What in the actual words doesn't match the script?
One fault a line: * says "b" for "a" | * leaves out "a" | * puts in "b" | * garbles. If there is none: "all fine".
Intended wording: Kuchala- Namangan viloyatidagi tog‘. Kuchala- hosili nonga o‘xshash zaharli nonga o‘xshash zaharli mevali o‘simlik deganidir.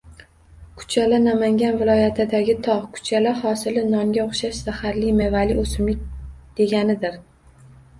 * leaves out "nonga o‘xshash zaharli"